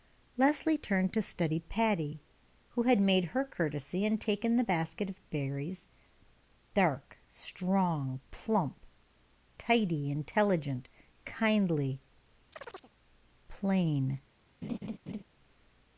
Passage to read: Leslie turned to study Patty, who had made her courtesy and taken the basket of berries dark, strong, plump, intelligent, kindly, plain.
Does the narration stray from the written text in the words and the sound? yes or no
yes